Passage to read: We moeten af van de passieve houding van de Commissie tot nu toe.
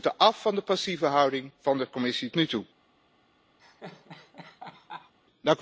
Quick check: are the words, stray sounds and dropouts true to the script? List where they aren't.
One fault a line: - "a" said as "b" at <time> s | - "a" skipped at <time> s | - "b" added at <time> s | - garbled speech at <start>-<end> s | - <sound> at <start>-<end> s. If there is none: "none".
- "tot" skipped at 2.3 s
- laugh at 3.6-5.1 s